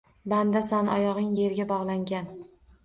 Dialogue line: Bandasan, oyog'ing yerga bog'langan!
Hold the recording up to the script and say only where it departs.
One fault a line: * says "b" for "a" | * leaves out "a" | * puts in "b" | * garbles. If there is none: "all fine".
all fine